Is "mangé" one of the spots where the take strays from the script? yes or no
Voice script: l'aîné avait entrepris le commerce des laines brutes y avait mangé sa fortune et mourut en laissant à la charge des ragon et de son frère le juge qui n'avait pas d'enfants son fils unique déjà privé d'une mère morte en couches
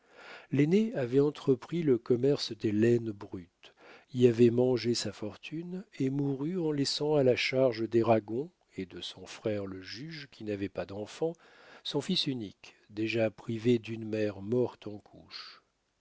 no